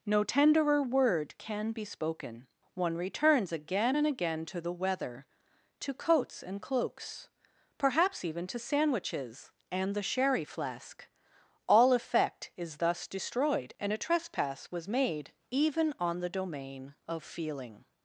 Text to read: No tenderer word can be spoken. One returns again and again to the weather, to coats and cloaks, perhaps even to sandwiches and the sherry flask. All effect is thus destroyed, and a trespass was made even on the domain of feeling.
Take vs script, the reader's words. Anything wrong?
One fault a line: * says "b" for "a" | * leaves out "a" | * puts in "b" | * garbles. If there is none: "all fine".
all fine